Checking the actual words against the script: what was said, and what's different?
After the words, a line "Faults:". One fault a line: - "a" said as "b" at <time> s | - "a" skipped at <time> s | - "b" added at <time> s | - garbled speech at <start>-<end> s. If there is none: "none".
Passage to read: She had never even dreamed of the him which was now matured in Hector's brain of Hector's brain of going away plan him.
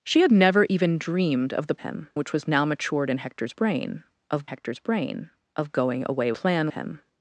She had never even dreamed of the him which was now matured in Hector's brain of Hector's brain of going away plan him.
Faults:
none